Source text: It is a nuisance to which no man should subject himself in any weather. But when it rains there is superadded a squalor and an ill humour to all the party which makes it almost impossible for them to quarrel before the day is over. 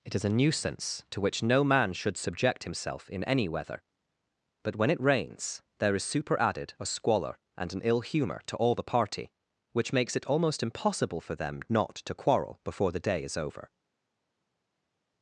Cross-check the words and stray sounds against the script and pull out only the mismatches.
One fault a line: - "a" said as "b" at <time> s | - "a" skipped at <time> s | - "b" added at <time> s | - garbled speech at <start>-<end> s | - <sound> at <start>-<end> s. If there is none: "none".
- "not" added at 11.7 s